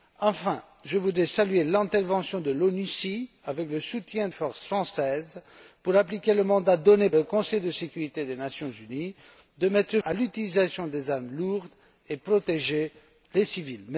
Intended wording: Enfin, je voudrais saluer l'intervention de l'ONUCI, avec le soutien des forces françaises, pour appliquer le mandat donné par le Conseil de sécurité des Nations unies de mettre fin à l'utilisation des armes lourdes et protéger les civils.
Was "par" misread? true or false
true